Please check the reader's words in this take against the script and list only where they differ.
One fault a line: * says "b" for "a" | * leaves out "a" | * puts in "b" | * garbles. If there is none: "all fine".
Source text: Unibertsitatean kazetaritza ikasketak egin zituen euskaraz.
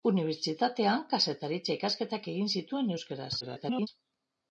* garbles